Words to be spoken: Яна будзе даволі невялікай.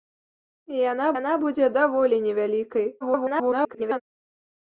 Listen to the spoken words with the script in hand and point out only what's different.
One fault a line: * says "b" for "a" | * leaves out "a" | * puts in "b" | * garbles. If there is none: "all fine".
* puts in "яна"
* garbles